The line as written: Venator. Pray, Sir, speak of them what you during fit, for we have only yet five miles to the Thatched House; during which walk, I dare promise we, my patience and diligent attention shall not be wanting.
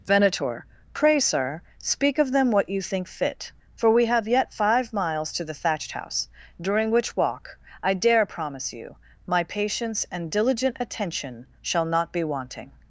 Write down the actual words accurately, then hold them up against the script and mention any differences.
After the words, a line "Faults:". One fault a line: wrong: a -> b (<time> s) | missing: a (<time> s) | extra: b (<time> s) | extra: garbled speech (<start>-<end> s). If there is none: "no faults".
Venator. Pray, Sir, speak of them what you think fit, for we have yet five miles to the Thatched House; during which walk, I dare promise you, my patience and diligent attention shall not be wanting.
Faults:
wrong: during -> think (2.8 s)
missing: only (4.3 s)
wrong: we -> you (8.7 s)